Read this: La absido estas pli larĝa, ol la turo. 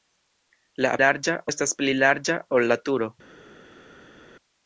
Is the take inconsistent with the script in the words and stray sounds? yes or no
yes